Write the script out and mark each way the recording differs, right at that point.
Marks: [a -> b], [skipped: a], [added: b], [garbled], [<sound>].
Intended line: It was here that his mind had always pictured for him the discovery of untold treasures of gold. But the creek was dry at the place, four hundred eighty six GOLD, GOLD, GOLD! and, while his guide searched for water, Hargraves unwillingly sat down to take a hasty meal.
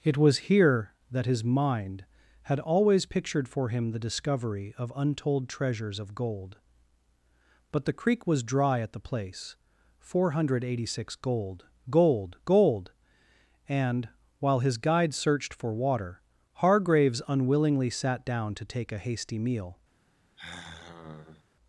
It was here that his mind had always pictured for him the discovery of untold treasures of gold. But the creek was dry at the place, four hundred eighty six GOLD, GOLD, GOLD! and, while his guide searched for water, Hargraves unwillingly sat down to take a hasty meal. [sigh]